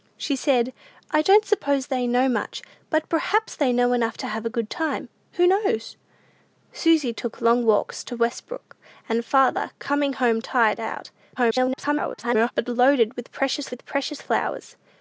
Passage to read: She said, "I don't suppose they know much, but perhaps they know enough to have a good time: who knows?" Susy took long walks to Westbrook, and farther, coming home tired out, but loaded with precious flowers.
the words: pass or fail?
fail